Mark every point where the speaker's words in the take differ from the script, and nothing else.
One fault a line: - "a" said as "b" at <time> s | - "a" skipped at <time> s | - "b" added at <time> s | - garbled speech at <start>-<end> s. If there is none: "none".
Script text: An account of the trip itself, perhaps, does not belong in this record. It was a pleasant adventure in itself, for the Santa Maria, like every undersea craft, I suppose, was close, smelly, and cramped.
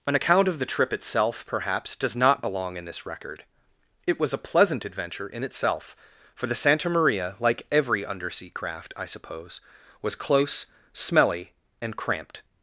none